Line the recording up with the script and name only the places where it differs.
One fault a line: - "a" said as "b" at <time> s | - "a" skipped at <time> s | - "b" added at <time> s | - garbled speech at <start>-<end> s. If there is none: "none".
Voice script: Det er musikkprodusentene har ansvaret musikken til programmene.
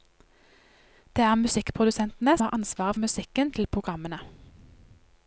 none